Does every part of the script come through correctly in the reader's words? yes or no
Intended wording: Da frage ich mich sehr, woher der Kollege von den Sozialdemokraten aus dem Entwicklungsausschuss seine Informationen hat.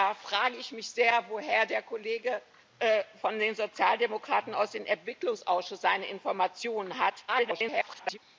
no